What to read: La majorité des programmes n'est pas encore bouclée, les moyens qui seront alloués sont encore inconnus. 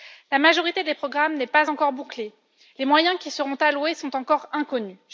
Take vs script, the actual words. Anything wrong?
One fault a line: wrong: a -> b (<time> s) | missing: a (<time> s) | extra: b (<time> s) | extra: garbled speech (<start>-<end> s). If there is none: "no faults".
no faults